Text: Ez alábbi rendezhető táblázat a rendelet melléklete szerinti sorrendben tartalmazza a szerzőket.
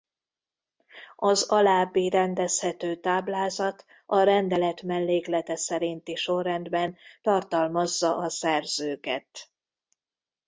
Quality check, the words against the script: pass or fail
fail